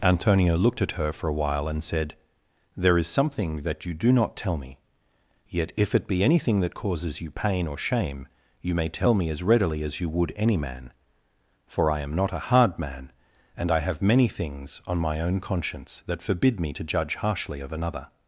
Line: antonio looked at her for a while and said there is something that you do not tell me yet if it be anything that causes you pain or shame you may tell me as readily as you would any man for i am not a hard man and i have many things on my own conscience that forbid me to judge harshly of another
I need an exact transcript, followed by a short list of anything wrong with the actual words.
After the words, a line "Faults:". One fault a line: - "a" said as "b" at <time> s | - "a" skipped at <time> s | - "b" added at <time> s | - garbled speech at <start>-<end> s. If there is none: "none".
antonio looked at her for a while and said there is something that you do not tell me yet if it be anything that causes you pain or shame you may tell me as readily as you would any man for i am not a hard man and i have many things on my own conscience that forbid me to judge harshly of another
Faults:
none